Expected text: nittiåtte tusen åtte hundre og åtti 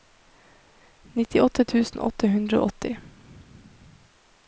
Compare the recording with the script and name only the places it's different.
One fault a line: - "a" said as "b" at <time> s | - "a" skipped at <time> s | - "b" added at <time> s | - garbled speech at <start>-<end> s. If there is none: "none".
none